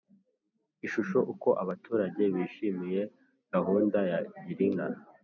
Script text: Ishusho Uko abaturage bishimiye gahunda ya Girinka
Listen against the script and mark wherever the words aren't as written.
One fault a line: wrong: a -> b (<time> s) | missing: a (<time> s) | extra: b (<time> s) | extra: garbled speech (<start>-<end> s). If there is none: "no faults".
no faults